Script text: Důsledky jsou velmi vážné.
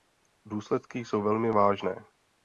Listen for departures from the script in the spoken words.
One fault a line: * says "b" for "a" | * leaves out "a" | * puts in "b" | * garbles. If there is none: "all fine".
all fine